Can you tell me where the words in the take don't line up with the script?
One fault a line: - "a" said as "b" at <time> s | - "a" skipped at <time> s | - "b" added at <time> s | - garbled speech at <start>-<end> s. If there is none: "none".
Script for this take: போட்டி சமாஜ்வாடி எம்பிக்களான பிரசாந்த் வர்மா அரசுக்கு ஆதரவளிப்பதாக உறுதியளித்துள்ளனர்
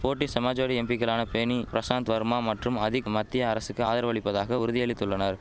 - "பேனி" added at 1.3 s
- "மற்றும் அதிக் மத்திய" added at 2.4 s